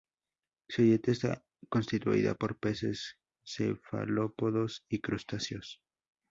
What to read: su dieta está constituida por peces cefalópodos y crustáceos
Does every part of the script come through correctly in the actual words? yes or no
yes